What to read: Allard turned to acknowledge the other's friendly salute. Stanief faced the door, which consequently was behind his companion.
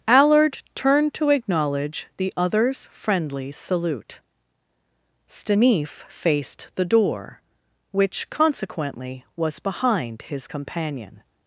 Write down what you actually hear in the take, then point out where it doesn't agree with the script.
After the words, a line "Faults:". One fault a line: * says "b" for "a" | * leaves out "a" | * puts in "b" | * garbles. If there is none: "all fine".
Allard turned to acknowledge the other's friendly salute. Stanief faced the door, which consequently was behind his companion.
Faults:
all fine